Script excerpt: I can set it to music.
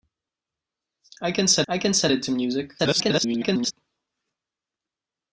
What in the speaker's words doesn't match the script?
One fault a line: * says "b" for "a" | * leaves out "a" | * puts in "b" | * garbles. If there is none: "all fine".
* puts in "I can set"
* garbles